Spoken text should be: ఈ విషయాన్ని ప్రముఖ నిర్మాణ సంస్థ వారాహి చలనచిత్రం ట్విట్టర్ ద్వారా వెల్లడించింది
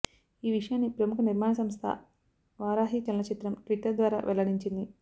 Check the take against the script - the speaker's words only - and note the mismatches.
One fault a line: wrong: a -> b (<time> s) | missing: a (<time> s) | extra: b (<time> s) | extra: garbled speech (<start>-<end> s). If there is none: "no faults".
no faults